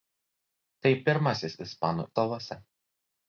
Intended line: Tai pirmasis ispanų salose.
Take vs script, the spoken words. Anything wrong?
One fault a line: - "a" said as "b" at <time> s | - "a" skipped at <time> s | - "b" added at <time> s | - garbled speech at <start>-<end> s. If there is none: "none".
none